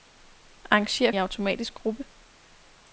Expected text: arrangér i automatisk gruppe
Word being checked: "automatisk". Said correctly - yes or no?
yes